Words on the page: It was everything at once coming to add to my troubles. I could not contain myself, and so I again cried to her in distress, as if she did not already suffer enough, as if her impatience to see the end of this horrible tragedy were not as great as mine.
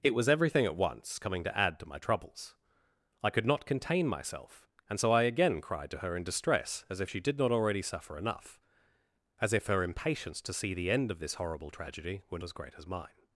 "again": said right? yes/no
yes